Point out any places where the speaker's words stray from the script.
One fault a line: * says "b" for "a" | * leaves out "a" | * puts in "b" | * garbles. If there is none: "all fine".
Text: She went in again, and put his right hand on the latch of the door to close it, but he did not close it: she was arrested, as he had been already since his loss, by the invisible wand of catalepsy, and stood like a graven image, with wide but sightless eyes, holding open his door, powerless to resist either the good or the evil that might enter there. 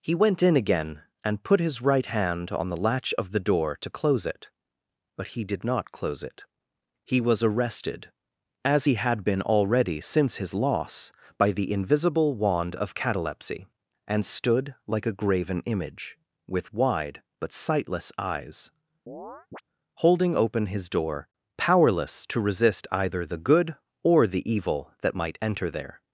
* says "He" for "She"
* says "he" for "she"